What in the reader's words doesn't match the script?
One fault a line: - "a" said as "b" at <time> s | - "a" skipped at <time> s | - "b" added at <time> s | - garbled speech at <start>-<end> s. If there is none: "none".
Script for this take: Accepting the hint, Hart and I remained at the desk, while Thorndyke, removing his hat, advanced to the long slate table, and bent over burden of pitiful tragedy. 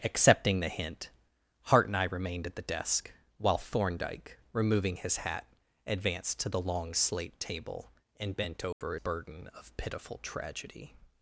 none